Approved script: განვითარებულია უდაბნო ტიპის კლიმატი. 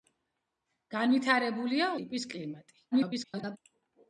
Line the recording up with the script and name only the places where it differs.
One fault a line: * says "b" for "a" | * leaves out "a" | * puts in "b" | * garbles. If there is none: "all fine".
* leaves out "უდაბნო"
* garbles